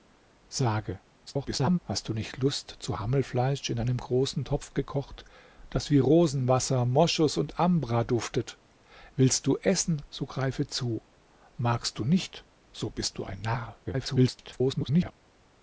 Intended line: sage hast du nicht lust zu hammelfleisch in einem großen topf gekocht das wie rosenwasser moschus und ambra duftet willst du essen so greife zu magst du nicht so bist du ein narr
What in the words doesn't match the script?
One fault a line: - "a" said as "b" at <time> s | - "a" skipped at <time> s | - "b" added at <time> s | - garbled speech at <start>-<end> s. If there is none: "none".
- garbled speech at 1.3-1.8 s
- garbled speech at 13.8-15.1 s